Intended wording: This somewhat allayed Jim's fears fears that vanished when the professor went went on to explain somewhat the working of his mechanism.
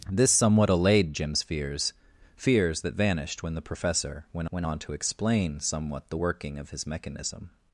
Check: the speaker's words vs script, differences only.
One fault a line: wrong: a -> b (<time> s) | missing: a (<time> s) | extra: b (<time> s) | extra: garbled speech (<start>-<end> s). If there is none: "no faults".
no faults